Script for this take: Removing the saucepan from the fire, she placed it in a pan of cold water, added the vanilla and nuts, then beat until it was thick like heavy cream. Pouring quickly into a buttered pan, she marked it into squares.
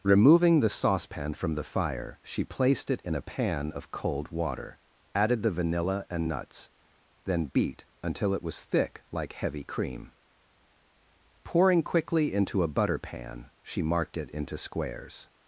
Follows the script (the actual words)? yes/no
no